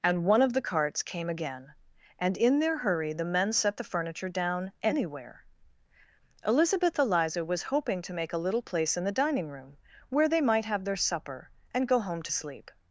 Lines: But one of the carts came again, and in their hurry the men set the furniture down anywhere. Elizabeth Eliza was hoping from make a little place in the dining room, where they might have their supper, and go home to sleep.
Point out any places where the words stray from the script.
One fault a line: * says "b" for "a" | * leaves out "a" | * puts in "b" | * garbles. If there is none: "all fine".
* says "And" for "But"
* says "to" for "from"